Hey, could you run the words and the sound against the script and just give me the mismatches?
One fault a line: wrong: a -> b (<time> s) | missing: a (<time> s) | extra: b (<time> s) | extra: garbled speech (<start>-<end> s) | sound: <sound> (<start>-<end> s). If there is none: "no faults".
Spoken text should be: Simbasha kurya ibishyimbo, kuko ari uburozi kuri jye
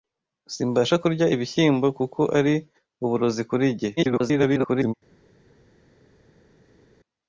extra: garbled speech (4.0-4.9 s)